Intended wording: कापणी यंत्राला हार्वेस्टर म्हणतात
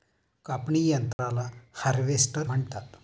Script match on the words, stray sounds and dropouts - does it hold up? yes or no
no